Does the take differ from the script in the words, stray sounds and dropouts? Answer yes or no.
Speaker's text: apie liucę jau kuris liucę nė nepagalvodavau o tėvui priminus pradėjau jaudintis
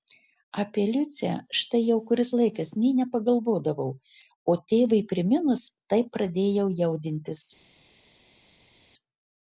yes